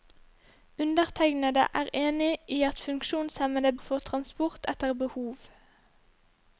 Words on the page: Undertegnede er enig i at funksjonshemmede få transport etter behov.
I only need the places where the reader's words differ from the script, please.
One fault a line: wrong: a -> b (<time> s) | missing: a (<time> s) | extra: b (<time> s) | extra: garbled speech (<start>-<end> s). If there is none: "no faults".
no faults